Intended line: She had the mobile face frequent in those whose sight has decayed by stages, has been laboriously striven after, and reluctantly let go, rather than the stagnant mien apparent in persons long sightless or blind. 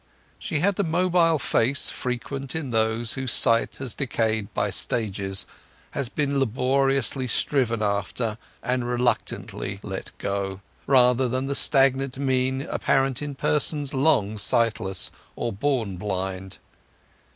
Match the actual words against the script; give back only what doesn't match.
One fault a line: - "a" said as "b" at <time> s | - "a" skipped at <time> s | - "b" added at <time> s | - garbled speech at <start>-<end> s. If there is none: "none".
- "born" added at 15.5 s